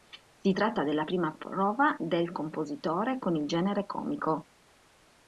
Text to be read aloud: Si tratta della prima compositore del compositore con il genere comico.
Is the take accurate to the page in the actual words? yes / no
no